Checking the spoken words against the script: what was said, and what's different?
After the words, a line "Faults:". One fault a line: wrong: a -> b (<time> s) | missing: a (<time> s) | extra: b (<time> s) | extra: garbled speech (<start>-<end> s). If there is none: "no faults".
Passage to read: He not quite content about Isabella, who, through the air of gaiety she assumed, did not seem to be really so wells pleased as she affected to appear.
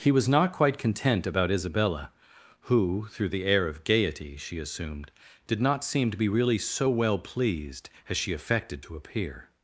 He was not quite content about Isabella, who, through the air of gaiety she assumed, did not seem to be really so well pleased as she affected to appear.
Faults:
extra: was (0.1 s)
wrong: wells -> well (6.9 s)